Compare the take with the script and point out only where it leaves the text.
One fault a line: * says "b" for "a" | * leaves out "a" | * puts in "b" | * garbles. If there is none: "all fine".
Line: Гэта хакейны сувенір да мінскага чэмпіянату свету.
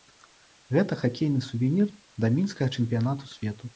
all fine